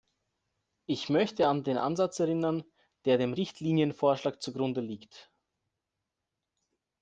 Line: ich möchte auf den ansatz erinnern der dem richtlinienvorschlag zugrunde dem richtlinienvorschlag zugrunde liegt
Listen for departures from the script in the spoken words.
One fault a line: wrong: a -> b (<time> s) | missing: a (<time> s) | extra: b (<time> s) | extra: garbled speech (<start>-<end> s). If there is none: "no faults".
wrong: auf -> an (1.5 s)
missing: dem richtlinienvorschlag zugrunde (4.8 s)